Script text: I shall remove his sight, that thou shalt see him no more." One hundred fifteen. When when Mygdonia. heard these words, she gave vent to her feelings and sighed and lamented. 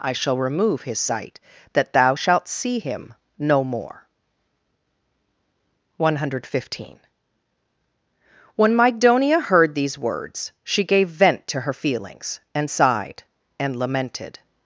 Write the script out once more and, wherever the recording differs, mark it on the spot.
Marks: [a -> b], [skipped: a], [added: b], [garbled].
I shall remove his sight, that thou shalt see him no more." One hundred fifteen. When [skipped: when] Mygdonia. heard these words, she gave vent to her feelings and sighed and lamented.